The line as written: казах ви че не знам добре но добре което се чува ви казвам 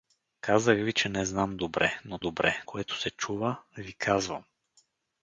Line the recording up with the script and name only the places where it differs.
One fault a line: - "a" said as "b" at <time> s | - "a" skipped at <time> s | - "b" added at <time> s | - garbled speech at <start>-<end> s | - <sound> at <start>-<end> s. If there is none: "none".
none